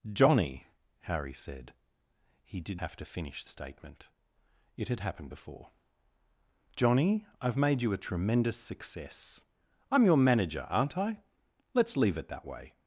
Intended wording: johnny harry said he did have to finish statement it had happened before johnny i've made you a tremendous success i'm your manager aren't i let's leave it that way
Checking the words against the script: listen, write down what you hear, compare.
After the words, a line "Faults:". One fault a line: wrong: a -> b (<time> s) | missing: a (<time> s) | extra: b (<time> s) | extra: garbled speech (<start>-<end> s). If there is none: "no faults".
johnny harry said he did have to finish statement it had happened before johnny i've made you a tremendous success i'm your manager aren't i let's leave it that way
Faults:
no faults